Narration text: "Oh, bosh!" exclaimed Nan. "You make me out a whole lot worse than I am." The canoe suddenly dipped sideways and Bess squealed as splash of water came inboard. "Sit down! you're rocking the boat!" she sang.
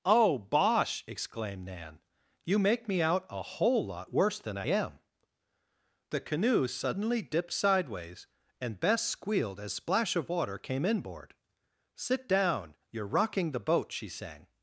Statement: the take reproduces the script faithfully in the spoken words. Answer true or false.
true